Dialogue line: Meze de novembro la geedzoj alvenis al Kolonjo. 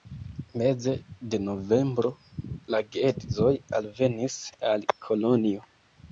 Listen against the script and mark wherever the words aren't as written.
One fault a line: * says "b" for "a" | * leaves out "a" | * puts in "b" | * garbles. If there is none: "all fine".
all fine